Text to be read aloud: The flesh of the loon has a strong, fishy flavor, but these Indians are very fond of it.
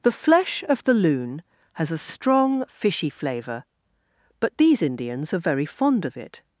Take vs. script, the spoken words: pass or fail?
pass